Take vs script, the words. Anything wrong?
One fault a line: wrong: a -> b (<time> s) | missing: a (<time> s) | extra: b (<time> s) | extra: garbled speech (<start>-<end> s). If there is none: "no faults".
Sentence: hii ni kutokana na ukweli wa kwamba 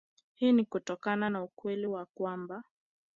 no faults